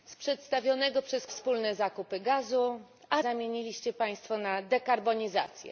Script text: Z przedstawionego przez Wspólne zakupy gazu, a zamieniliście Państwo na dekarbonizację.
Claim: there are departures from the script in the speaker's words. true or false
false